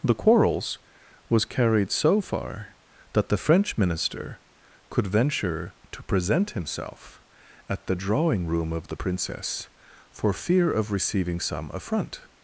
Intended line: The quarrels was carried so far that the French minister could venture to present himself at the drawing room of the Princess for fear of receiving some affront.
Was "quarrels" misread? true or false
false